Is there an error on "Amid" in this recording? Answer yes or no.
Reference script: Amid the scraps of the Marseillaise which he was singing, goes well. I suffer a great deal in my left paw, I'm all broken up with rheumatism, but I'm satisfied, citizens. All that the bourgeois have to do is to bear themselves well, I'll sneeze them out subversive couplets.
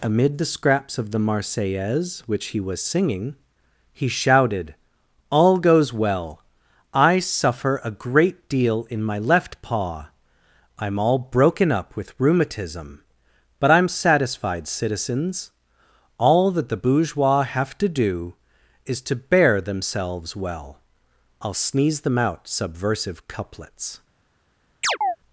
no